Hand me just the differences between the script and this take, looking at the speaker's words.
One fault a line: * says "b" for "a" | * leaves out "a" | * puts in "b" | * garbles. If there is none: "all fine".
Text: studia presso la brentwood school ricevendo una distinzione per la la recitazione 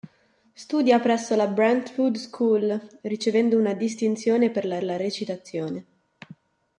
all fine